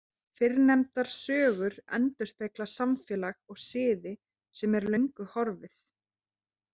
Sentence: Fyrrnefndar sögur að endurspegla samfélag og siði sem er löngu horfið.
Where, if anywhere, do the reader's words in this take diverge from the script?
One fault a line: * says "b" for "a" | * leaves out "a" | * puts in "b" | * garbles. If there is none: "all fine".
all fine